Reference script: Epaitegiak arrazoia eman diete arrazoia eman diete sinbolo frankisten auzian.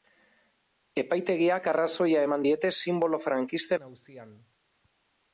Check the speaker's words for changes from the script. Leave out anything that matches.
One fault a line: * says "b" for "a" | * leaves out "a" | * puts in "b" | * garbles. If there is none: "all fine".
* leaves out "arrazoia eman diete"